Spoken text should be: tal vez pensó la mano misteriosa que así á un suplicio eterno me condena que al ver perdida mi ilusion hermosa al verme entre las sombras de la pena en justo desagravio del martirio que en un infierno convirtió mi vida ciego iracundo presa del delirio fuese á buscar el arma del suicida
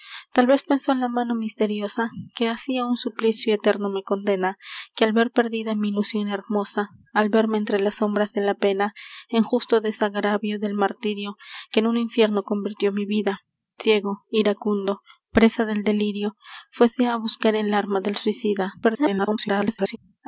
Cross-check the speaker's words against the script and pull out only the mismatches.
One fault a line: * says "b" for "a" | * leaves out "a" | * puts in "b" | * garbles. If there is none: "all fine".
* garbles